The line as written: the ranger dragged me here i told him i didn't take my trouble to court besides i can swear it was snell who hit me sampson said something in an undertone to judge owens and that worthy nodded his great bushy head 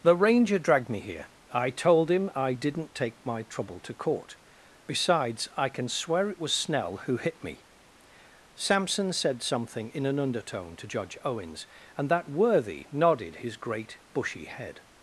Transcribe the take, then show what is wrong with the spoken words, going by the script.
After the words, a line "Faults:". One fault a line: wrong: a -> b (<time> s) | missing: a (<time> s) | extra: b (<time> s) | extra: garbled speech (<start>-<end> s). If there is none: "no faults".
the ranger dragged me here i told him i didn't take my trouble to court besides i can swear it was snell who hit me sampson said something in an undertone to judge owens and that worthy nodded his great bushy head
Faults:
no faults